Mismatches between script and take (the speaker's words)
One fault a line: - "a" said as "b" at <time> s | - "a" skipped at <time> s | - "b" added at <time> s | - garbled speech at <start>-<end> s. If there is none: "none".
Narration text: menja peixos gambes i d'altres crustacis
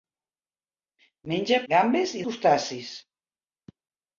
- "peixos" skipped at 1.6 s
- "d'altres" skipped at 2.2 s